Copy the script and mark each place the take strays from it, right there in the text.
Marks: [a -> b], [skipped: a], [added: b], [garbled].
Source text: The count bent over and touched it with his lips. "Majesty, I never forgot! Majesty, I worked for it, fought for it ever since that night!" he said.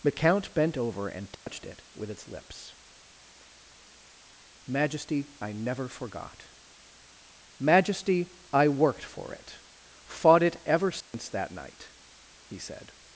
The count bent over and touched it with [his -> its] lips. "Majesty, I never forgot! Majesty, I worked for it, fought [skipped: for] it ever since that night!" he said.